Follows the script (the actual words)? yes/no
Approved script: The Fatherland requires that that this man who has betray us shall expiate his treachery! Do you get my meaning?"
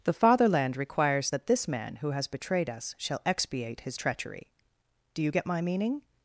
no